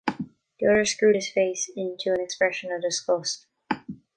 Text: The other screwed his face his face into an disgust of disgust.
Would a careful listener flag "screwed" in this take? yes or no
no